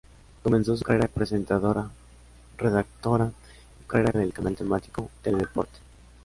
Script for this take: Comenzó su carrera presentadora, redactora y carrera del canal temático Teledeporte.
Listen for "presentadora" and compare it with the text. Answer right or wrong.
right